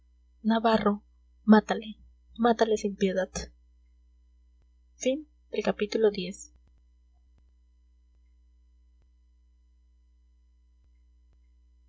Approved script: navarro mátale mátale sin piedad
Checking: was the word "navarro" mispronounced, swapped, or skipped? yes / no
no